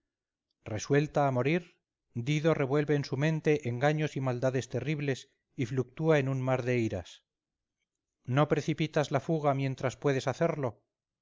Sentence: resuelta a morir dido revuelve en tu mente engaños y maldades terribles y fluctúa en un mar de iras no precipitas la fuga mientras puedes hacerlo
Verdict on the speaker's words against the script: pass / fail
fail